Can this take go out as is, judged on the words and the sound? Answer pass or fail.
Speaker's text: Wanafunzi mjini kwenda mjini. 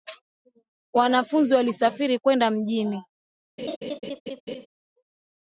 fail